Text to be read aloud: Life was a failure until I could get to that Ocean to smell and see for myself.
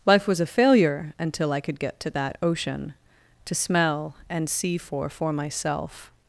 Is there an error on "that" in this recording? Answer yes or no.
no